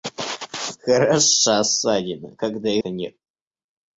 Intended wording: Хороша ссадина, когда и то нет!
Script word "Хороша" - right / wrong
right